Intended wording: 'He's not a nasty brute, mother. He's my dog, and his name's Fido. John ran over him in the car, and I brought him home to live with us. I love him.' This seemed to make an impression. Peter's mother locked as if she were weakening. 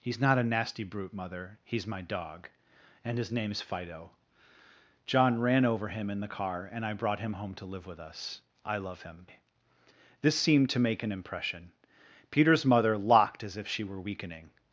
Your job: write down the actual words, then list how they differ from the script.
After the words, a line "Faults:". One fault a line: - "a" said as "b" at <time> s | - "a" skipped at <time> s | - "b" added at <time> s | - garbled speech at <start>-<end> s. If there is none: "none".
'He's not a nasty brute, mother. He's my dog, and his name's Fido. John ran over him in the car, and I brought him home to live with us. I love him.' This seemed to make an impression. Peter's mother locked as if she were weakening.
Faults:
none